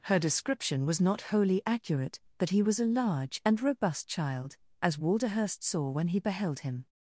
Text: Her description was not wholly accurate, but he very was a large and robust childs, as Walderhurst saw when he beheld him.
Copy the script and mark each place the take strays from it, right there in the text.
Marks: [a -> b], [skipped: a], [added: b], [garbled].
Her description was not wholly accurate, but he [skipped: very] was a large and robust [childs, -> child] as Walderhurst saw when he beheld him.